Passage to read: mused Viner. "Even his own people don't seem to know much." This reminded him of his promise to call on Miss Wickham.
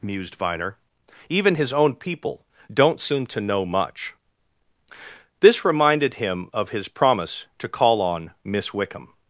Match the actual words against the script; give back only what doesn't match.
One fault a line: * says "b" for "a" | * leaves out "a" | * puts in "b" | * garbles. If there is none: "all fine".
all fine